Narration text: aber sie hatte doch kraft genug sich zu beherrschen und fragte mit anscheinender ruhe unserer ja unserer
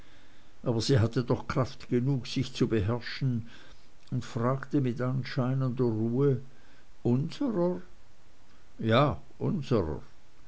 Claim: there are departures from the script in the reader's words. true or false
false